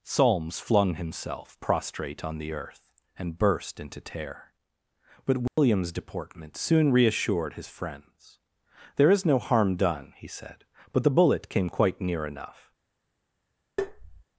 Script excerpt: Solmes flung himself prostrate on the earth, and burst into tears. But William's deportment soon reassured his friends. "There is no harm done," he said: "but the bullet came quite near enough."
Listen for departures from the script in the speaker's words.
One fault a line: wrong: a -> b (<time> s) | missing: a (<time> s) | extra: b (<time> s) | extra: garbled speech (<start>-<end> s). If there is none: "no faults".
wrong: tears -> tear (4.0 s)